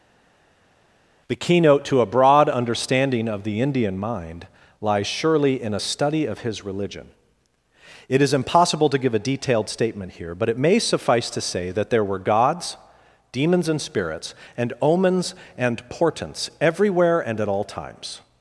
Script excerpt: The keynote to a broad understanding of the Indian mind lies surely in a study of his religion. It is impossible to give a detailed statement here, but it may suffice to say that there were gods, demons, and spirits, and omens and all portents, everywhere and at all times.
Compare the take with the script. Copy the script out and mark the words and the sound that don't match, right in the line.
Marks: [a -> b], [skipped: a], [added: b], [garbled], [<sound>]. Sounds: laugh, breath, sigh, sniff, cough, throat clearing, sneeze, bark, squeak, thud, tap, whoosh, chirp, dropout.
The keynote to a broad understanding of the Indian mind lies surely in a study of his religion. It is impossible to give a detailed statement here, but it may suffice to say that there were gods, demons, and spirits, and omens and [skipped: all] portents, everywhere and at all times.